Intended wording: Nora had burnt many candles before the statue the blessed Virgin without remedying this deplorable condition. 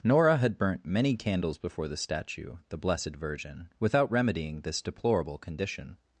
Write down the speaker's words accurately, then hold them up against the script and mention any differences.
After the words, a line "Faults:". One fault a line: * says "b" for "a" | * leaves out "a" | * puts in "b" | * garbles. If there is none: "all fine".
Nora had burnt many candles before the statue the blessed Virgin without remedying this deplorable condition.
Faults:
all fine